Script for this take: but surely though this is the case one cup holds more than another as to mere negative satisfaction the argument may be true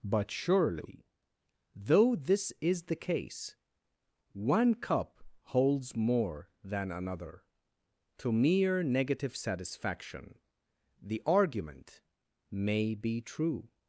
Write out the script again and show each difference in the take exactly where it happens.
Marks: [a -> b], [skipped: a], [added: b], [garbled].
but surely though this is the case one cup holds more than another [skipped: as] to mere negative satisfaction the argument may be true